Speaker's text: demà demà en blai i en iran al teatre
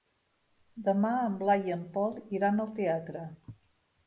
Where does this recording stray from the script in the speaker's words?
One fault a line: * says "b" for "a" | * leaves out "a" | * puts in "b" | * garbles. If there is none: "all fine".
* leaves out "demà"
* puts in "pol"